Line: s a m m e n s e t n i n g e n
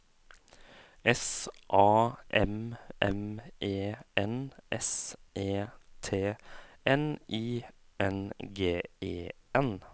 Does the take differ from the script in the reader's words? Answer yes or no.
no